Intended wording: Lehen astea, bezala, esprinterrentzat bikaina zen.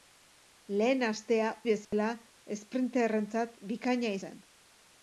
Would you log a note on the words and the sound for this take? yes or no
yes